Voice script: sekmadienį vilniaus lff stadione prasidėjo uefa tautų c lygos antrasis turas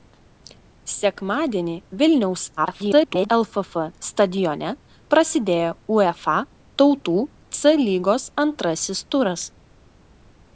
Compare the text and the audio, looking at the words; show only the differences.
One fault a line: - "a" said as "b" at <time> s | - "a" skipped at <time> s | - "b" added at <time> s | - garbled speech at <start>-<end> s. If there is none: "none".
- garbled speech at 2.6-3.3 s